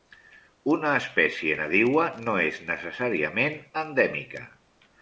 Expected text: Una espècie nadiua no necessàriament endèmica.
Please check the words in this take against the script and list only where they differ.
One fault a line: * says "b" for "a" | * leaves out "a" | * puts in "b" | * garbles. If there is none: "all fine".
* puts in "és"